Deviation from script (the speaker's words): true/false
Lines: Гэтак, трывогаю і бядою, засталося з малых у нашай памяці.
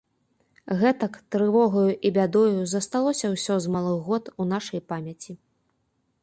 true